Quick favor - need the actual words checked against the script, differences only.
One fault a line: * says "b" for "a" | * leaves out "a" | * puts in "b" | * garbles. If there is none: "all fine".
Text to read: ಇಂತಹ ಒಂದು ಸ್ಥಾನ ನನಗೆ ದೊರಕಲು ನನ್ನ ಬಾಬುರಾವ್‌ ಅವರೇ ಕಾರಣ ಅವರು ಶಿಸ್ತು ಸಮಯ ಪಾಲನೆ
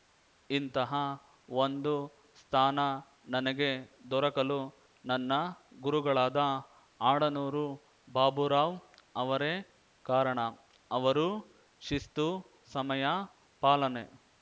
* puts in "ಗುರುಗಳಾದ ಆಡನೂರು"